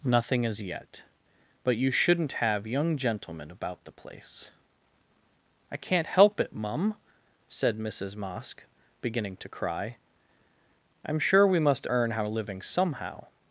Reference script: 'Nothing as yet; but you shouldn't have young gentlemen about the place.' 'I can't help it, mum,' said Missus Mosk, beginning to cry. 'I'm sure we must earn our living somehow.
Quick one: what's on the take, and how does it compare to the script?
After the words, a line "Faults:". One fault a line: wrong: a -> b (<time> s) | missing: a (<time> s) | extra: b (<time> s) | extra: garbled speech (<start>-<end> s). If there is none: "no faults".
'Nothing as yet; but you shouldn't have young gentlemen about the place.' 'I can't help it, mum,' said Missus Mosk, beginning to cry. 'I'm sure we must earn our living somehow.
Faults:
no faults